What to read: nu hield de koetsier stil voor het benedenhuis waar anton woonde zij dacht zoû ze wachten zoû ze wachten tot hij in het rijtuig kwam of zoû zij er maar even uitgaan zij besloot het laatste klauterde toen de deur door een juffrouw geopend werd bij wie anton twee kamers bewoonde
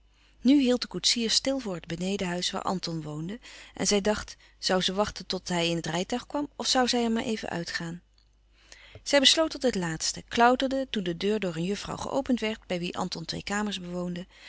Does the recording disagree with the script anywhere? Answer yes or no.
yes